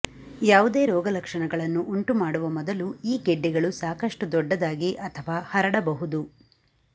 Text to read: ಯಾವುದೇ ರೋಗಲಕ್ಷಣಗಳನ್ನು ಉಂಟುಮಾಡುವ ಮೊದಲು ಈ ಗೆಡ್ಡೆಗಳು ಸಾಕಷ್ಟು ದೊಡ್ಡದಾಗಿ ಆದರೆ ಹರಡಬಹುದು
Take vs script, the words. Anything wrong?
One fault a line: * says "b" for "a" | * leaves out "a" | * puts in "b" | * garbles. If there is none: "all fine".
* says "ಅಥವಾ" for "ಆದರೆ"